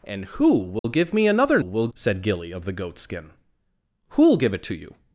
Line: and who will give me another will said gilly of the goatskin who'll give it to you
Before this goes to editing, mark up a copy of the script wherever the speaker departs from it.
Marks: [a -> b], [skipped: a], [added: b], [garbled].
and who will give me another will said gilly of the goatskin who'll give it to you